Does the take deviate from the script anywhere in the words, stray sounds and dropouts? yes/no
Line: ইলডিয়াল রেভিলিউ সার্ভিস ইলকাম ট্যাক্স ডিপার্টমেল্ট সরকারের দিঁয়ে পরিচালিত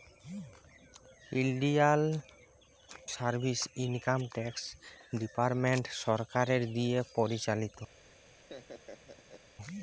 yes